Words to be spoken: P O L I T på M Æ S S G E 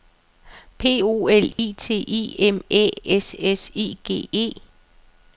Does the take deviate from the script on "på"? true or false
true